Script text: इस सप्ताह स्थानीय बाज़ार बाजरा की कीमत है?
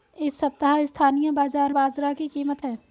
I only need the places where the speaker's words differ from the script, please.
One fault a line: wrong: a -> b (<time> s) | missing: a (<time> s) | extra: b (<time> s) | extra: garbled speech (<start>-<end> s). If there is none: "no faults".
no faults